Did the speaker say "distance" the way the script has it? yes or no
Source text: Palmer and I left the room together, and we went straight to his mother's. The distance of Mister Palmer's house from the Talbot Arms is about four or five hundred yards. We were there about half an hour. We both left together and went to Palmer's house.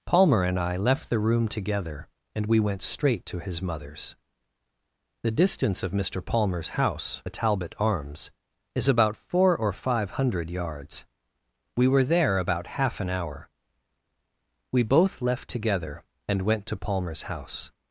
yes